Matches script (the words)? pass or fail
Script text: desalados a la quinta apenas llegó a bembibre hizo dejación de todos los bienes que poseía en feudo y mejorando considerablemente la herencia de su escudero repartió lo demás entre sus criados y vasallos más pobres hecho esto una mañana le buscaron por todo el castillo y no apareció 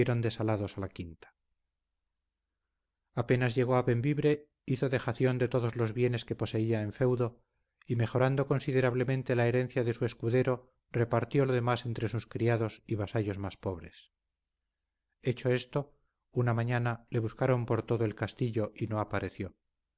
pass